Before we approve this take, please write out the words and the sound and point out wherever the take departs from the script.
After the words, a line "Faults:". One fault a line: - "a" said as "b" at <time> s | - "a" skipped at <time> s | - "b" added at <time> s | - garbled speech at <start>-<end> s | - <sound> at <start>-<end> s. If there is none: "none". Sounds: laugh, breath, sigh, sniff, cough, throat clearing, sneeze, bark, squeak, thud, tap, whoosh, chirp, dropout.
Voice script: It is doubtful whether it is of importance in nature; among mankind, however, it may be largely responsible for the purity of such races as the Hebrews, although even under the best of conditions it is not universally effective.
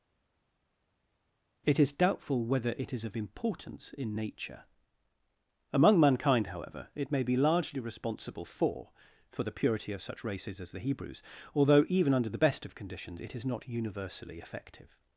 It is doubtful whether it is of importance in nature; among mankind, however, it may be largely responsible for for the purity of such races as the Hebrews, although even under the best of conditions it is not universally effective.
Faults:
- "for" added at 9.3 s